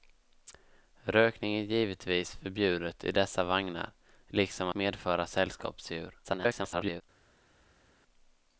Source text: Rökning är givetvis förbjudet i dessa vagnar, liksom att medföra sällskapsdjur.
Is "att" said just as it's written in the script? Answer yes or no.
no